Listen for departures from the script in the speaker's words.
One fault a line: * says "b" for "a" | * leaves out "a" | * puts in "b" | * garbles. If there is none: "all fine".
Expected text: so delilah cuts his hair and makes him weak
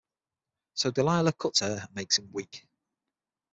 * leaves out "his"